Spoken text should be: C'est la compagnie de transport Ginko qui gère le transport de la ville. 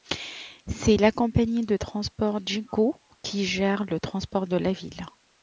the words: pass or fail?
pass